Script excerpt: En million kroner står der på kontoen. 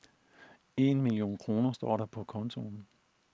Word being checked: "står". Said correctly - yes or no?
yes